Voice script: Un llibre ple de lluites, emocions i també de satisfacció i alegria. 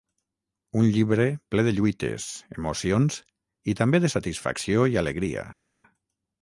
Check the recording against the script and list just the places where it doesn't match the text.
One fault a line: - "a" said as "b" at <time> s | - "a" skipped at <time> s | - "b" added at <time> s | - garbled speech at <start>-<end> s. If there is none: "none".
none